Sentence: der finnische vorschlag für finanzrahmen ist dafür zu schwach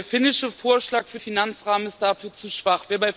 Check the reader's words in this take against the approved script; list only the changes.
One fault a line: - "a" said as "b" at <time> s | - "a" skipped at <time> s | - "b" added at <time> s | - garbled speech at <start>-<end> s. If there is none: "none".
none